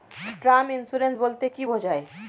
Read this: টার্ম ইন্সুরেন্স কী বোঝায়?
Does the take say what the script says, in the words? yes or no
no